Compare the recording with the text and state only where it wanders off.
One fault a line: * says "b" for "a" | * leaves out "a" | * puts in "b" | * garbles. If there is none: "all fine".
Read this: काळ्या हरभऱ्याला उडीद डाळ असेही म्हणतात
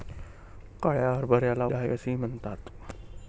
* leaves out "उडीद"